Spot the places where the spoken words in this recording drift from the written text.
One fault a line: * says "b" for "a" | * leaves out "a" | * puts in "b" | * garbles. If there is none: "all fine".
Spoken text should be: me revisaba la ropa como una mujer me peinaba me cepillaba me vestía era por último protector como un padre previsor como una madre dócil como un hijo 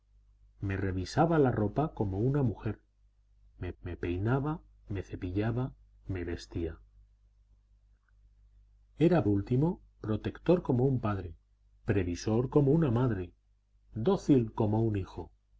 * puts in "me"
* leaves out "por"